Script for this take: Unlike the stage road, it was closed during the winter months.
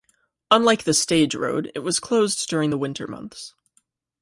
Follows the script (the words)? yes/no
yes